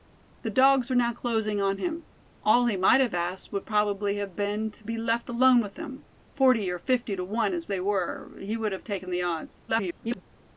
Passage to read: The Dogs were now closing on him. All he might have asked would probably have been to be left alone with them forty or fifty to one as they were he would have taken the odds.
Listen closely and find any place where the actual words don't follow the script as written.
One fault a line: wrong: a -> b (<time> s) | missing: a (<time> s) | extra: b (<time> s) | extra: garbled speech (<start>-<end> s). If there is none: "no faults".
extra: garbled speech (9.7-10.2 s)